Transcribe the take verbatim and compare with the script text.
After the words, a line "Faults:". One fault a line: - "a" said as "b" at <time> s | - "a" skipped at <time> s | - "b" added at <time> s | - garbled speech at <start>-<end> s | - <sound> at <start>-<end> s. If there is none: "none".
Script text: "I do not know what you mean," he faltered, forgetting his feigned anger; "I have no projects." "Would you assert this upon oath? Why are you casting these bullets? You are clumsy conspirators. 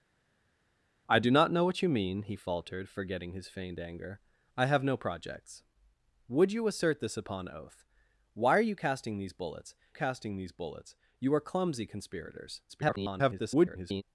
"I do not know what you mean," he faltered, forgetting his feigned anger; "I have no projects." "Would you assert this upon oath? Why are you casting these bullets casting these bullets? You are clumsy conspirators. [garbled]
Faults:
- "casting these bullets" added at 9.9 s
- garbled speech at 12.7-14.0 s